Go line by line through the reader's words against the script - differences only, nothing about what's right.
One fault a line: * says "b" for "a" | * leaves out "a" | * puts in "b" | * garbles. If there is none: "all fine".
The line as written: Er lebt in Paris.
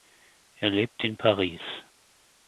all fine